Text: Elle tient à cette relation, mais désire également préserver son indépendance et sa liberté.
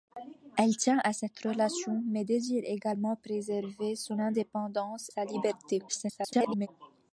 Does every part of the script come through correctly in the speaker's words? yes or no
no